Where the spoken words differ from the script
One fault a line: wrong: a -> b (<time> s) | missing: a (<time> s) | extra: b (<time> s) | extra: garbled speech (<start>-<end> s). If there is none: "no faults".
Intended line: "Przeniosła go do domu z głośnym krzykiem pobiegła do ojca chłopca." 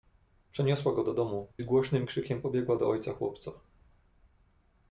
no faults